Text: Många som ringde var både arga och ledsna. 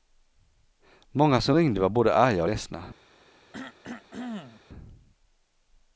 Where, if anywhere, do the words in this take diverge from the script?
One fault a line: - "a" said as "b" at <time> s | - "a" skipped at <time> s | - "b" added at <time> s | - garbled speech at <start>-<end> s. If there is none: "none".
none